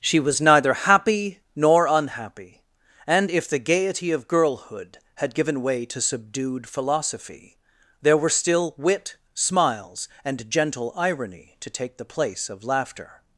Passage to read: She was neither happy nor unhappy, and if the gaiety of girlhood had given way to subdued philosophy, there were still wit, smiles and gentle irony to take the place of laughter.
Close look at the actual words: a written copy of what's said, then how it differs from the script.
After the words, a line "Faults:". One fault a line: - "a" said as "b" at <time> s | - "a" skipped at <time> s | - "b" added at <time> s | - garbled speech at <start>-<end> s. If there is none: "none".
She was neither happy nor unhappy, and if the gaiety of girlhood had given way to subdued philosophy, there were still wit, smiles and gentle irony to take the place of laughter.
Faults:
none